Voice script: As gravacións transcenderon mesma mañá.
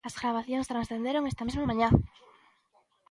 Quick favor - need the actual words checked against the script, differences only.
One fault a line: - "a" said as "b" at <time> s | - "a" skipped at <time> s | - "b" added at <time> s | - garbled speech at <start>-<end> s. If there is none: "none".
- "esta" added at 1.3 s